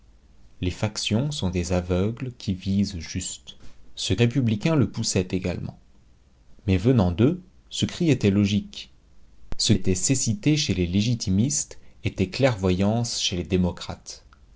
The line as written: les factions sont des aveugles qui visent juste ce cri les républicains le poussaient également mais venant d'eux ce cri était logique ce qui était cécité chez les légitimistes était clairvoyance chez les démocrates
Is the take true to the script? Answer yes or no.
no